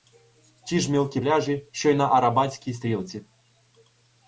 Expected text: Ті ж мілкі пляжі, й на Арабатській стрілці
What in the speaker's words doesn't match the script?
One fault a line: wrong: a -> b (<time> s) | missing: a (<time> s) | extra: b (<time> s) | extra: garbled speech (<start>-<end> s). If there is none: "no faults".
extra: що (1.7 s)